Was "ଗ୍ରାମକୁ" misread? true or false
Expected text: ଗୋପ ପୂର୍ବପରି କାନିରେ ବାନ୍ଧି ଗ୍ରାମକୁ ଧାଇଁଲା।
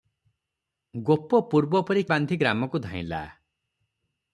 false